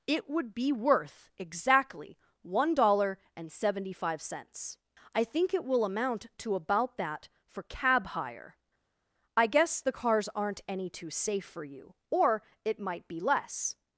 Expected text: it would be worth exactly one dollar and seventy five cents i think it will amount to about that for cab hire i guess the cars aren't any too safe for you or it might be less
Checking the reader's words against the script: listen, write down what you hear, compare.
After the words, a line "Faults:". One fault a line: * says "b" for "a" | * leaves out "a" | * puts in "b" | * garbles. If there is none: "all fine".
it would be worth exactly one dollar and seventy five cents i think it will amount to about that for cab hire i guess the cars aren't any too safe for you or it might be less
Faults:
all fine